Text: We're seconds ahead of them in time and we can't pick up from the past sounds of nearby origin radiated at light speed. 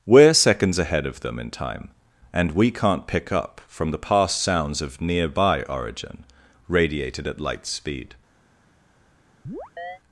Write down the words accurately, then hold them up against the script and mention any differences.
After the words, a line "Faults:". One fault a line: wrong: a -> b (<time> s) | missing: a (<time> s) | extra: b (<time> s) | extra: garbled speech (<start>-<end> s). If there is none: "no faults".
We're seconds ahead of them in time and we can't pick up from the past sounds of nearby origin radiated at light speed.
Faults:
no faults